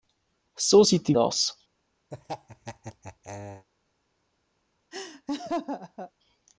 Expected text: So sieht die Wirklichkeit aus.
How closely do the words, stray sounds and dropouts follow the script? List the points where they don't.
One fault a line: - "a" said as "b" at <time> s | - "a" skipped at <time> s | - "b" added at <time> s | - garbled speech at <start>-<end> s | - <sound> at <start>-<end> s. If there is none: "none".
- "Wirklichkeit" skipped at 1.2 s
- laugh at 2.1-3.7 s
- laugh at 4.9-6.1 s